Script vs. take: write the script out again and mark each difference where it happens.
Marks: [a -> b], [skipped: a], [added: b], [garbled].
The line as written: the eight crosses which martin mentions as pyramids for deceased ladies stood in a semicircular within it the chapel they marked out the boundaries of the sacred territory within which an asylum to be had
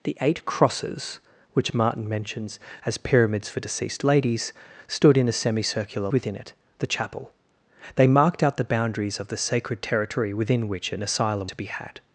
the eight crosses which martin mentions as pyramids for deceased ladies stood in a semicircular within it the chapel they marked out the boundaries of the sacred territory within which an asylum to be had